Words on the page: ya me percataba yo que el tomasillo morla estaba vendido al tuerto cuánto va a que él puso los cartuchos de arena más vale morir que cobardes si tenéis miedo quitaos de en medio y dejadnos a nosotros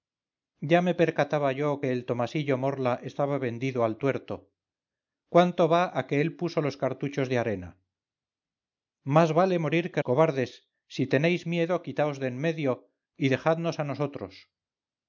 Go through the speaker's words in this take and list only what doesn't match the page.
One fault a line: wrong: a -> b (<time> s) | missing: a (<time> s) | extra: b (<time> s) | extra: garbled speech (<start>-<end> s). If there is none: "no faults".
no faults